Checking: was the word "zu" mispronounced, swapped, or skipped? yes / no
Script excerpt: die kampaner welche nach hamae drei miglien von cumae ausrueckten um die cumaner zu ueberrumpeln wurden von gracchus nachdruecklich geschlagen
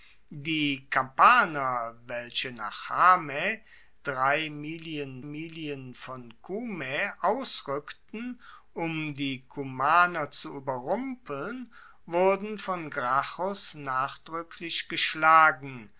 no